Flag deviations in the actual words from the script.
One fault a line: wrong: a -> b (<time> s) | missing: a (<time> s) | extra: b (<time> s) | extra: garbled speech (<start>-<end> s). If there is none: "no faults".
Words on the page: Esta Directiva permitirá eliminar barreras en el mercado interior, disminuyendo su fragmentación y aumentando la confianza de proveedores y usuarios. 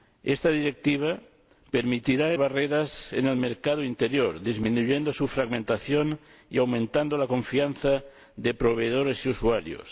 missing: eliminar (2.3 s)